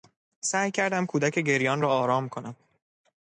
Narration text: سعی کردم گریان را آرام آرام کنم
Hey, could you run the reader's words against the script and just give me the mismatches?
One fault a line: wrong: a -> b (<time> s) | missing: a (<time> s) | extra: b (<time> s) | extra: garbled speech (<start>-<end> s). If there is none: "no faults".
extra: کودک (1.1 s)
missing: آرام (2.3 s)